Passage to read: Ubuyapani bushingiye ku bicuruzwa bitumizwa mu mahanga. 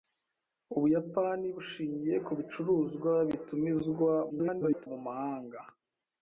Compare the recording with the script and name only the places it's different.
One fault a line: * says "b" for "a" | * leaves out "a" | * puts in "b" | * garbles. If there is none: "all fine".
* garbles